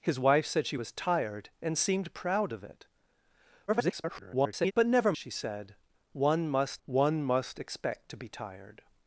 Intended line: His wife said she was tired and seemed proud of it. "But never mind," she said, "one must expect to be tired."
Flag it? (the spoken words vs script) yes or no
yes